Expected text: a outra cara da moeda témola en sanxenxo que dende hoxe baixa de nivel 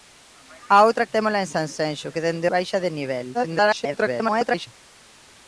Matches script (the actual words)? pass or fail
fail